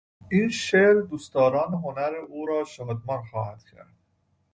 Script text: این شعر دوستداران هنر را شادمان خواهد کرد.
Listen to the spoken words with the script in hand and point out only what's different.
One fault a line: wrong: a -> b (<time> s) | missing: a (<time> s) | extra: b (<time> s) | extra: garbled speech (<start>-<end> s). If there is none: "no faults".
extra: او (2.3 s)